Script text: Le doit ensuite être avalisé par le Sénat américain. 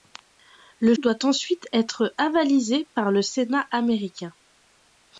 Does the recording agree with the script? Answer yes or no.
yes